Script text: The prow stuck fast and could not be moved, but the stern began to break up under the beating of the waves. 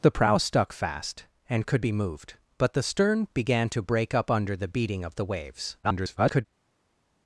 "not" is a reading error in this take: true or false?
true